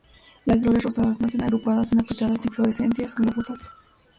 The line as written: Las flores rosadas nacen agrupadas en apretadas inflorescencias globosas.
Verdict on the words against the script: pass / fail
pass